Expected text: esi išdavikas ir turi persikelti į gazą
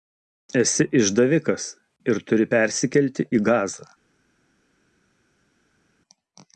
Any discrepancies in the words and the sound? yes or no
no